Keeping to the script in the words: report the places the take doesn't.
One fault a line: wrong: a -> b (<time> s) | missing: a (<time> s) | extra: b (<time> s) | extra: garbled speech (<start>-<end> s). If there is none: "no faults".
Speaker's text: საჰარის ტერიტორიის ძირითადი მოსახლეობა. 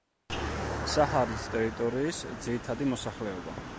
no faults